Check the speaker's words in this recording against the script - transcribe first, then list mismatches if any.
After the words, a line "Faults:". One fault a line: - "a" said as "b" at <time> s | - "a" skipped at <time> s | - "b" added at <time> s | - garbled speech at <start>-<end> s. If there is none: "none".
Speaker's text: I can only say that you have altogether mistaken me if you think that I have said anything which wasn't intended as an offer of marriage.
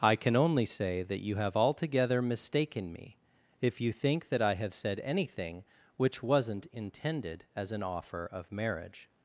I can only say that you have altogether mistaken me if you think that I have said anything which wasn't intended as an offer of marriage.
Faults:
none